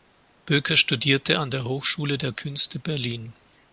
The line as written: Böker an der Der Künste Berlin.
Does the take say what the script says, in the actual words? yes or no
no